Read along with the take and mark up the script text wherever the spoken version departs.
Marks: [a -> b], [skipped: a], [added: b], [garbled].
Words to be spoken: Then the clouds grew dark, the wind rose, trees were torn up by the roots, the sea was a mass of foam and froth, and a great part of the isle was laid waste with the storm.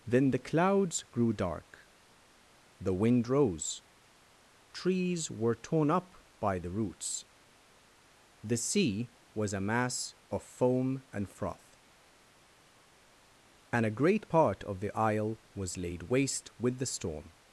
Then the clouds grew dark, the wind rose, trees were torn up by the roots, the sea was a mass of foam and froth, and a great part of the isle was laid waste with the storm.